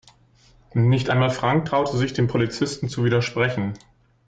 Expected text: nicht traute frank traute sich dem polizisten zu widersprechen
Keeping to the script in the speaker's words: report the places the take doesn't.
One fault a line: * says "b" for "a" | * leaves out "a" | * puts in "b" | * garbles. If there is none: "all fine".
* says "einmal" for "traute"